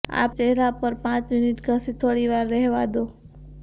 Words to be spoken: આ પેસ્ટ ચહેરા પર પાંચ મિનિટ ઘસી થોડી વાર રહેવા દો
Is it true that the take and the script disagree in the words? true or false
true